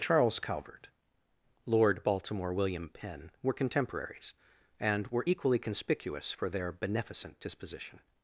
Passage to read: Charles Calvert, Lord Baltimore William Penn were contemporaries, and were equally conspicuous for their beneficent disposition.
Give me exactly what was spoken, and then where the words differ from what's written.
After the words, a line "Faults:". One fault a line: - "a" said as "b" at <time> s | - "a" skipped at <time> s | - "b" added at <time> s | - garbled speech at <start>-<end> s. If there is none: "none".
Charles Calvert, Lord Baltimore William Penn were contemporaries, and were equally conspicuous for their beneficent disposition.
Faults:
none